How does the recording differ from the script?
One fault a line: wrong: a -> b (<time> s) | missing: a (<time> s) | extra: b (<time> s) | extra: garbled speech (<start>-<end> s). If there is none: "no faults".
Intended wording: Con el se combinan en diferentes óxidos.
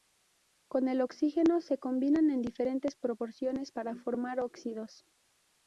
extra: oxígeno (1.0 s)
extra: proporciones para formar (3.0 s)